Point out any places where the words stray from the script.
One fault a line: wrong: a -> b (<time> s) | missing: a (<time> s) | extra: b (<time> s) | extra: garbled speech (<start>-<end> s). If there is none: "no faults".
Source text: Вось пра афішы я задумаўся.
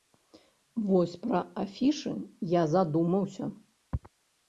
no faults